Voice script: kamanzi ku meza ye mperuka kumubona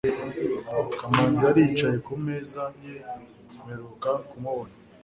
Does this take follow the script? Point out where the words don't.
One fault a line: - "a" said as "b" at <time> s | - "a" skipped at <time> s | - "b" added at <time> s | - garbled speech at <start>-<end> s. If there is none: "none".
- "yari yicaye" added at 1.5 s